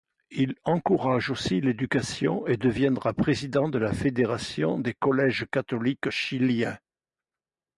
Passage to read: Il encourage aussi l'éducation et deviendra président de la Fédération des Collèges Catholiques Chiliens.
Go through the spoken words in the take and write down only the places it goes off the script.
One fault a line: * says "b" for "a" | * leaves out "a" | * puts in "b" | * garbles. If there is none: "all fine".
all fine